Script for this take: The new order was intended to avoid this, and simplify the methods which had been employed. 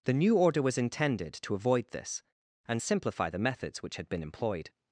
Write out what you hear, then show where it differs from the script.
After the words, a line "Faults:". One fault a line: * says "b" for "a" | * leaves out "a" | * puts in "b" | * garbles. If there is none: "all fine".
The new order was intended to avoid this, and simplify the methods which had been employed.
Faults:
all fine